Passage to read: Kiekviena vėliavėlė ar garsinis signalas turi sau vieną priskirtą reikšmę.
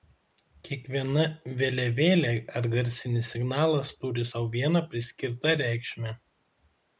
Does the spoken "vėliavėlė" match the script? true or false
true